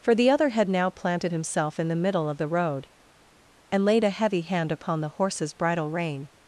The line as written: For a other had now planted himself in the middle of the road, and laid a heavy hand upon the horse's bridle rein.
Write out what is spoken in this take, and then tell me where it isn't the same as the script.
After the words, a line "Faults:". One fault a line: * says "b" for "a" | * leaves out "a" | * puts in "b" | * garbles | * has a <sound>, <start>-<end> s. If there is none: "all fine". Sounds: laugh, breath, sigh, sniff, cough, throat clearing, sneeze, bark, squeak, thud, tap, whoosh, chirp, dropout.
For the other had now planted himself in the middle of the road, and laid a heavy hand upon the horse's bridle rein.
Faults:
* says "the" for "a"